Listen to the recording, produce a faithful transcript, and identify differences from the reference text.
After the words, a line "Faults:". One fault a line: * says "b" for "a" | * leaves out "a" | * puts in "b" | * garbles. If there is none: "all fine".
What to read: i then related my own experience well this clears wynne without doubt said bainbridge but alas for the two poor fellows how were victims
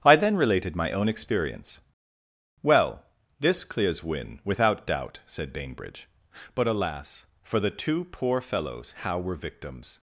i then related my own experience well this clears wynne without doubt said bainbridge but alas for the two poor fellows how were victims
Faults:
all fine